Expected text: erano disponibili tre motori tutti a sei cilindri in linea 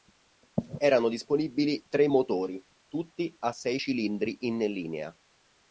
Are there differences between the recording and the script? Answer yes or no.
no